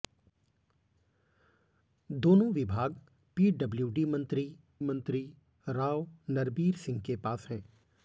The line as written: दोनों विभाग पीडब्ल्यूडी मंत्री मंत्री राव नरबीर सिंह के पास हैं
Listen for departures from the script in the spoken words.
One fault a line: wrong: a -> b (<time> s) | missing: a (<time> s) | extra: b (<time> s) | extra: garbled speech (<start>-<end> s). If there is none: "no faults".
no faults